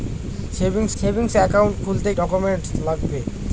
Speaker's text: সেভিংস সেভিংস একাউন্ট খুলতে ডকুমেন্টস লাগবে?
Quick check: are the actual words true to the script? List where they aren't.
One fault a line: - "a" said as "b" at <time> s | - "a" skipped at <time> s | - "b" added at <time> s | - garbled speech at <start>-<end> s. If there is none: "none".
none